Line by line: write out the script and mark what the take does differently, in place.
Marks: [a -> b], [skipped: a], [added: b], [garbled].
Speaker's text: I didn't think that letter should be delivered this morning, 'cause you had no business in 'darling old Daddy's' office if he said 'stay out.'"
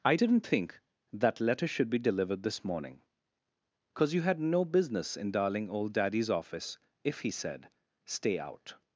I didn't think that letter should be delivered this morning, 'cause you had no business in 'darling old Daddy's' office if he said 'stay out.'"